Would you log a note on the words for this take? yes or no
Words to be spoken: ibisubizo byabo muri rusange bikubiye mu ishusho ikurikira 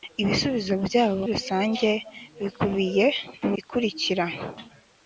yes